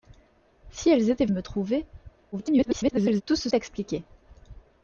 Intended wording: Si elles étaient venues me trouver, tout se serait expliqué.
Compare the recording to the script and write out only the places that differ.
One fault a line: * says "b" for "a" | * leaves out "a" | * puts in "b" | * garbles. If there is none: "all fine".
* leaves out "venues"
* garbles
* leaves out "serait"